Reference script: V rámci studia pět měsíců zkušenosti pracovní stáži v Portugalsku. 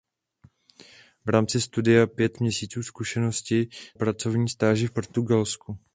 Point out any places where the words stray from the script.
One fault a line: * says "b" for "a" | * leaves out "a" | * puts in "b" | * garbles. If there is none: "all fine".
all fine